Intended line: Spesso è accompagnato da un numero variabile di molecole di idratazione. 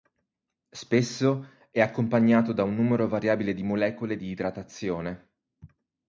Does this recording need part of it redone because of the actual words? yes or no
no